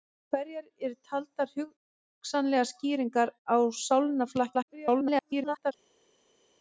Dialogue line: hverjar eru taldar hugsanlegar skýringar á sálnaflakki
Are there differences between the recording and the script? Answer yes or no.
yes